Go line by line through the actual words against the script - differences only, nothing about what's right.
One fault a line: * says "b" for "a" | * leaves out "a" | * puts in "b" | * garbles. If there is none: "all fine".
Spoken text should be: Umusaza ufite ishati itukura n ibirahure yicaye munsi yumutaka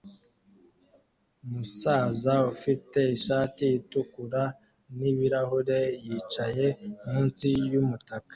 all fine